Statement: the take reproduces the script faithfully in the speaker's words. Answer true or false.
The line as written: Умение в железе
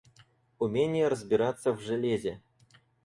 false